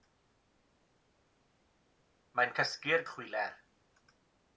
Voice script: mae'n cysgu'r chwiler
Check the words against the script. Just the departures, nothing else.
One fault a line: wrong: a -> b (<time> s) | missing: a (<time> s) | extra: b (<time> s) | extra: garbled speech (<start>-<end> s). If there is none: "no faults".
no faults